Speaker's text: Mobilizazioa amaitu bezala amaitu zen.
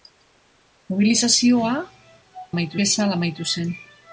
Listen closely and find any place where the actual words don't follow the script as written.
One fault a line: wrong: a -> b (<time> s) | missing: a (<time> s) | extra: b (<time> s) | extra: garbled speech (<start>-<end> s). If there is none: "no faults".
no faults